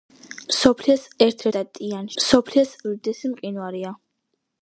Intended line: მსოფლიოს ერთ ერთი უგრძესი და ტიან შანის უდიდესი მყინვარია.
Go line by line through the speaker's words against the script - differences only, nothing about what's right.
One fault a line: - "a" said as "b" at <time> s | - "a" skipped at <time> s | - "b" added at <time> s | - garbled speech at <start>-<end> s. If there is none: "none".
- "ერთი უგრძესი" skipped at 1.4 s
- "შანის" said as "მსოფლიოს" at 2.2 s